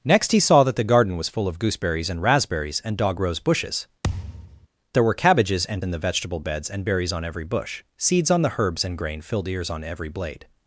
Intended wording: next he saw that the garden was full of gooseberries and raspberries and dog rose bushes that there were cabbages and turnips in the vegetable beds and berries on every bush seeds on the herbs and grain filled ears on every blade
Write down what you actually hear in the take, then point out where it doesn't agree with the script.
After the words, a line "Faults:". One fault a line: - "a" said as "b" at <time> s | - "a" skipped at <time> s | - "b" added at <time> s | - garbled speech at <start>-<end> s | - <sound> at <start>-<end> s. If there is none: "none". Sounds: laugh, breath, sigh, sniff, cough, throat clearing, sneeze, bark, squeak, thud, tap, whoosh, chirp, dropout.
next he saw that the garden was full of gooseberries and raspberries and dog rose bushes there were cabbages and in the vegetable beds and berries on every bush seeds on the herbs and grain filled ears on every blade
Faults:
- "that" skipped at 3.9 s
- thud at 4.0-4.7 s
- "turnips" skipped at 5.8 s